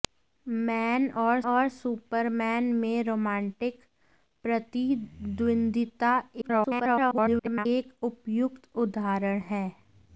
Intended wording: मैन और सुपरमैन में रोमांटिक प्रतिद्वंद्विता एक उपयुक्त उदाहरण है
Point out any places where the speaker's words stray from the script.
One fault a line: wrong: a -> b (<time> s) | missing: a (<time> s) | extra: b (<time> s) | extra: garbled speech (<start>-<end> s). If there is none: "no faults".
extra: और (1.5 s)
extra: garbled speech (6.4-7.7 s)